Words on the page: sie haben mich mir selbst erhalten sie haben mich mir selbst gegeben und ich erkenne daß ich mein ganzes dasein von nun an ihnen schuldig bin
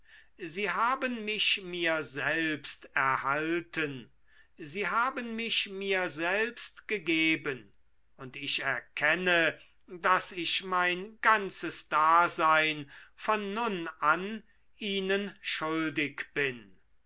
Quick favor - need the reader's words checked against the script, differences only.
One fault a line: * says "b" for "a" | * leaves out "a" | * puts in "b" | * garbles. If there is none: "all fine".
all fine